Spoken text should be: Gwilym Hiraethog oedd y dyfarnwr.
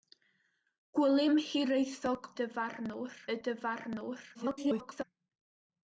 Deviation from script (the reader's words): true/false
true